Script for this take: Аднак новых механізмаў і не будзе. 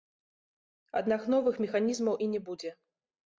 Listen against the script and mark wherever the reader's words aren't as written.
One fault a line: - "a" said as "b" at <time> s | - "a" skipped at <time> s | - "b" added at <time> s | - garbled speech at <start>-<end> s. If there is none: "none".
none